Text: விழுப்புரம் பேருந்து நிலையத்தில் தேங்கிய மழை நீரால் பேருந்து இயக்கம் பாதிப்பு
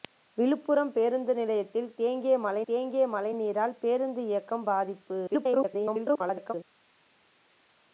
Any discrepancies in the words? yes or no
yes